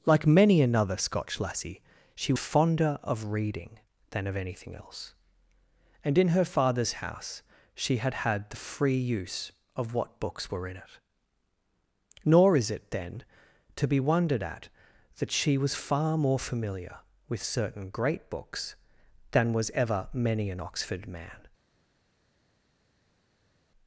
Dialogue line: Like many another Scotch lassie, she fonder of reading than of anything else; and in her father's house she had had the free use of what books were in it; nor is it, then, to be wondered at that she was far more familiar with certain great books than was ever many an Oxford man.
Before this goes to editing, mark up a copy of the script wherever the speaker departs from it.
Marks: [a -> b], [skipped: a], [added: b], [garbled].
Like many another Scotch lassie, she fonder of reading than of anything else; and in her father's house she had had the free use of what books were in it; nor is it, then, to be wondered at that she was far more familiar with certain great books than was ever many an Oxford man.